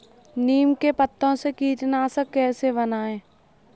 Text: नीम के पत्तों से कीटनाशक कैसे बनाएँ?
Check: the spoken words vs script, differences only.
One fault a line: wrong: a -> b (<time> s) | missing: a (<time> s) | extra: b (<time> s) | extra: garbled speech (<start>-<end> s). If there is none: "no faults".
no faults